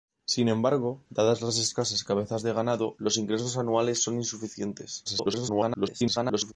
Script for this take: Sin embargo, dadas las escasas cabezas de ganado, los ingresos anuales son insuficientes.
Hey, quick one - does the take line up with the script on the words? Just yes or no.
no